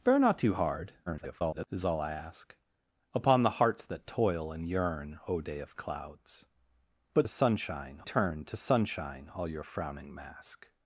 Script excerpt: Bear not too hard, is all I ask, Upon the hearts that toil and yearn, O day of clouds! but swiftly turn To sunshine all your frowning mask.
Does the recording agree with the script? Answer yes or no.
no